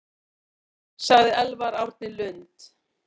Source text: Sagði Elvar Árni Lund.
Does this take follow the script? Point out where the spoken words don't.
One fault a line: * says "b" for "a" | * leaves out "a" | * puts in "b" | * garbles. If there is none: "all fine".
all fine